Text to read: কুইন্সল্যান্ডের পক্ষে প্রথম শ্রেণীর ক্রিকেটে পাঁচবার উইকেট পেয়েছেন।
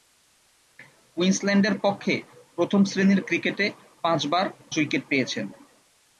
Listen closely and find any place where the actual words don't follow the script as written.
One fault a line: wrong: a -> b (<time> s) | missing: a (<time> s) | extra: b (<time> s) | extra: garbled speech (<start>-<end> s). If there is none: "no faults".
no faults